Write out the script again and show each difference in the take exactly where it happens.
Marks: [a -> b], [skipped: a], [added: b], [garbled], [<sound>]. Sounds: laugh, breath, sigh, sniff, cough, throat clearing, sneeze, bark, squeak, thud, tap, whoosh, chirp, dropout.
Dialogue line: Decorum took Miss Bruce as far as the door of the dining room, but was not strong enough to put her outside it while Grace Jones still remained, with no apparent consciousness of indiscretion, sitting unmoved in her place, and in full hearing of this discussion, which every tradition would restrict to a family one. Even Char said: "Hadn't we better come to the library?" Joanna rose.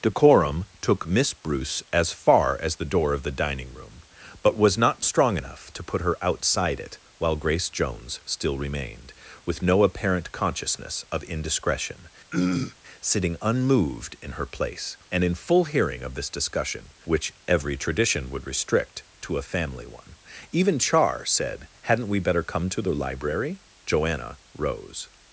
Decorum took Miss Bruce as far as the door of the dining room, but was not strong enough to put her outside it while Grace Jones still remained, with no apparent consciousness of indiscretion, [throat clearing] sitting unmoved in her place, and in full hearing of this discussion, which every tradition would restrict to a family one. Even Char said: "Hadn't we better come to the library?" Joanna rose.